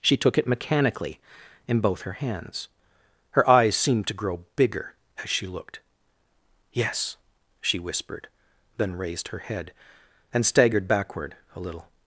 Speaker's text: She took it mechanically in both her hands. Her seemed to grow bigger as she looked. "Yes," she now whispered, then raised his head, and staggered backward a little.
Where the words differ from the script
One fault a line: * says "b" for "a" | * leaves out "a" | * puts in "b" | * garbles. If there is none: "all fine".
* puts in "eyes"
* leaves out "now"
* says "her" for "his"